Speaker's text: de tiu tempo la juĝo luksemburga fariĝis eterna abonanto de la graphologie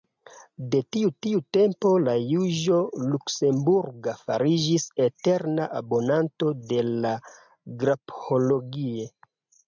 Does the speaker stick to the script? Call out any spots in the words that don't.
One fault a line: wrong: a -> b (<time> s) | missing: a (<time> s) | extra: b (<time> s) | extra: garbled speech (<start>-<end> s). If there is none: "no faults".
extra: tiu (1.2 s)